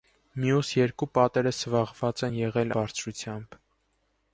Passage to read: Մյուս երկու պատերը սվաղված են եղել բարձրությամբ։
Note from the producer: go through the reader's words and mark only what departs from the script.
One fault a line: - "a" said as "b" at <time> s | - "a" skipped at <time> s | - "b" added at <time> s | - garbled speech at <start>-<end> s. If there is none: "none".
none